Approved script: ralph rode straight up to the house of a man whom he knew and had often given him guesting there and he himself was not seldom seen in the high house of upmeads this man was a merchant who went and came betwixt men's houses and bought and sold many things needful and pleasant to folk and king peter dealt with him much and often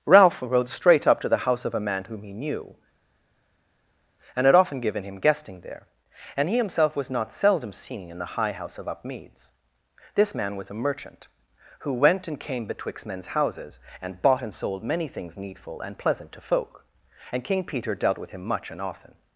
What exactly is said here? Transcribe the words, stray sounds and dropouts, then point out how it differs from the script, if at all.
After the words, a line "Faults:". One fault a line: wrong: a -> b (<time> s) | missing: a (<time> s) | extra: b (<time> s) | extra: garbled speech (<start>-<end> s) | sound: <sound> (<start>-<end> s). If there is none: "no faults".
ralph rode straight up to the house of a man whom he knew and had often given him guesting there and he himself was not seldom seen in the high house of upmeads this man was a merchant who went and came betwixt men's houses and bought and sold many things needful and pleasant to folk and king peter dealt with him much and often
Faults:
no faults